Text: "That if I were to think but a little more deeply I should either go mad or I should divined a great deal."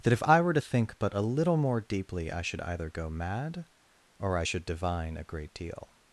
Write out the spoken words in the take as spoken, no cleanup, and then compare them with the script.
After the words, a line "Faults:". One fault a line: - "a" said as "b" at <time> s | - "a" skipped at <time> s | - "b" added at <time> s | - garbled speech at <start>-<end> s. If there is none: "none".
"That if I were to think but a little more deeply I should either go mad or I should divine a great deal."
Faults:
- "divined" said as "divine" at 4.7 s